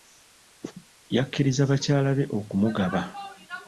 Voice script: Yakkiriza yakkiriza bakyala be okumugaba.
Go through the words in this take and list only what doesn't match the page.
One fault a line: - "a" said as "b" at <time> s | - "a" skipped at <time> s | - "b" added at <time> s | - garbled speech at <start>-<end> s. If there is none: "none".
- "yakkiriza" skipped at 1.6 s